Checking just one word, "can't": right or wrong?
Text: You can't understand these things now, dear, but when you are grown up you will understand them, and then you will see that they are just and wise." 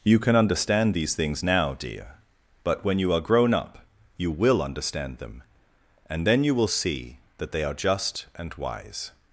wrong